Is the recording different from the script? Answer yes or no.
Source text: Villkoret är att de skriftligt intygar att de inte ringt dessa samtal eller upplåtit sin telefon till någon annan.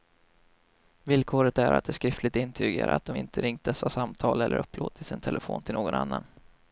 no